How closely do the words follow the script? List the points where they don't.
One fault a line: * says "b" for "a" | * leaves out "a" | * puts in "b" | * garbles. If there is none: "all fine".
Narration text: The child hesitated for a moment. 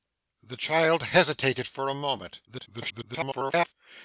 * garbles